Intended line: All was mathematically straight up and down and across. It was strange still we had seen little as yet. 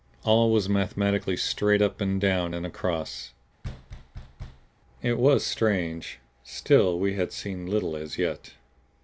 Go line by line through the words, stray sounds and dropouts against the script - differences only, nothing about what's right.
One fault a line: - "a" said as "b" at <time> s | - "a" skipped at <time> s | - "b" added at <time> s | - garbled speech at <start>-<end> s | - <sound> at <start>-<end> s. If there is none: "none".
- thud at 3.6-4.7 s